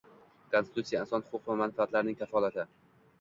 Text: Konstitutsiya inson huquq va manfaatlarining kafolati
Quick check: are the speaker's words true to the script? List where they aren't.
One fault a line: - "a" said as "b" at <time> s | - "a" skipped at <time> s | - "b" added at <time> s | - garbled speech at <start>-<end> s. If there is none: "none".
none